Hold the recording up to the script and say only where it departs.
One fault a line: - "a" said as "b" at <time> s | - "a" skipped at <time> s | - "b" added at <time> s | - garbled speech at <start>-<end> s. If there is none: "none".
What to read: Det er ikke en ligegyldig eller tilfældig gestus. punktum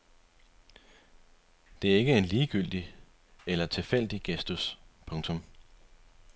none